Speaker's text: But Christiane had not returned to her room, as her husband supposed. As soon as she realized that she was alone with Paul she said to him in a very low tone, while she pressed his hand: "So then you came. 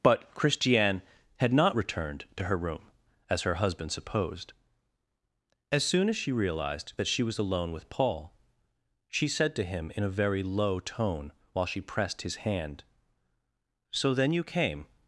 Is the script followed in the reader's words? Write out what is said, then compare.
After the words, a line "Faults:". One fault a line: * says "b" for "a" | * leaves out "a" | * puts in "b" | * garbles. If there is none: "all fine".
But Christiane had not returned to her room, as her husband supposed. As soon as she realized that she was alone with Paul she said to him in a very low tone, while she pressed his hand: "So then you came.
Faults:
all fine